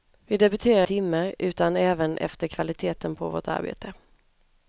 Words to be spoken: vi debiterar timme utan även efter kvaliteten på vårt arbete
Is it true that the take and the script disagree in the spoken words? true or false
false